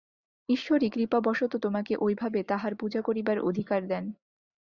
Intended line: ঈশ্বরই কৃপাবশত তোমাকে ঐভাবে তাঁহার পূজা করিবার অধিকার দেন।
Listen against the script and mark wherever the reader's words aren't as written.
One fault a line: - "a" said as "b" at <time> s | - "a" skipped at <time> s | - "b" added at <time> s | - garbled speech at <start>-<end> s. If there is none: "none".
none